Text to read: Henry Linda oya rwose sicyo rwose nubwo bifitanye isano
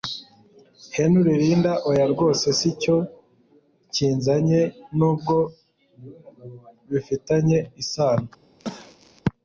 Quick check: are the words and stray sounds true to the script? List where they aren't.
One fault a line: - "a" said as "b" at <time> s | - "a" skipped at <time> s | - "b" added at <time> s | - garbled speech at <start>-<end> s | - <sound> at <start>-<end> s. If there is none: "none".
- "rwose" said as "kinzanye" at 3.9 s
- cough at 8.6-9.2 s